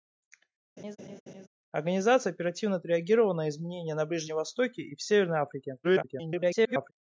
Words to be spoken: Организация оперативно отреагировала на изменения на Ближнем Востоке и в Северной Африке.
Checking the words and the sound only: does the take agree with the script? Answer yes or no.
no